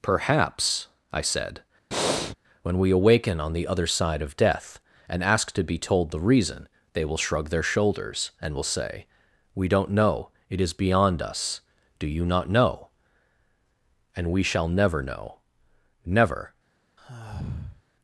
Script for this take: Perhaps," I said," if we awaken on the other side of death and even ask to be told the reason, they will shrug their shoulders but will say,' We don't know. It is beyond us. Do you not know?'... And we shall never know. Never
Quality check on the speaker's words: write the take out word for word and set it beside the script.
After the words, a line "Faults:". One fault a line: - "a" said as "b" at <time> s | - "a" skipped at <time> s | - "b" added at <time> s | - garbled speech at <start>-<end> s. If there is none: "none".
Perhaps," I said," when we awaken on the other side of death and ask to be told the reason, they will shrug their shoulders and will say,' We don't know. It is beyond us. Do you not know?'... And we shall never know. Never
Faults:
- "if" said as "when" at 2.6 s
- "even" skipped at 5.2 s
- "but" said as "and" at 8.4 s